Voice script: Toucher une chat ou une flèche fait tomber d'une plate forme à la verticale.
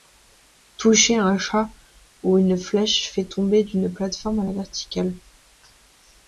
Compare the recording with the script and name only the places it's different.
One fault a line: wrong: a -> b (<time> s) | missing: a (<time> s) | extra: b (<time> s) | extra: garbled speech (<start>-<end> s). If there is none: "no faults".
wrong: une -> un (1.2 s)